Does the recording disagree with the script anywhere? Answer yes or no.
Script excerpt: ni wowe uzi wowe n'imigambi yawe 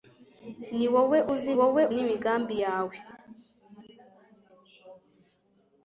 no